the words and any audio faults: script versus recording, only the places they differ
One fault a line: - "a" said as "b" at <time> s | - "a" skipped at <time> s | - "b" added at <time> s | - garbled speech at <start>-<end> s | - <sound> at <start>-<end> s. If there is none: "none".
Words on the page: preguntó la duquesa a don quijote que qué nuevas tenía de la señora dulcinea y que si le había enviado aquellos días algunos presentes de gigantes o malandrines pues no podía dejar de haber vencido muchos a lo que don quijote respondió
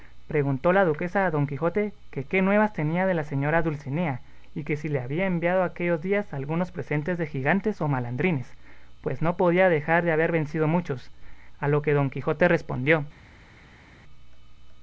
none